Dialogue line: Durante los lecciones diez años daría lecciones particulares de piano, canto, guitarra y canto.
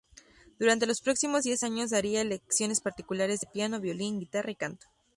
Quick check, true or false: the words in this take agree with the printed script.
false